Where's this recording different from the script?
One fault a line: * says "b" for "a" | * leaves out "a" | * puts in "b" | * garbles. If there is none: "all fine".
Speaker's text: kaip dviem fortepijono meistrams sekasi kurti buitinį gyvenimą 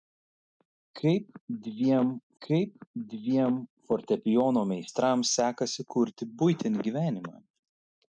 * puts in "kaip dviem"